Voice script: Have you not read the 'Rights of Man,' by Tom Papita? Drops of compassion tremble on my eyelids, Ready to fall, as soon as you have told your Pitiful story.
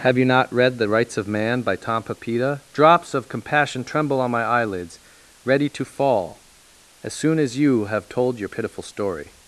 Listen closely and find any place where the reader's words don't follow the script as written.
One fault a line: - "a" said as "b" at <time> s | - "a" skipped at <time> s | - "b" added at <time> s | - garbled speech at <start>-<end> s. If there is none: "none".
none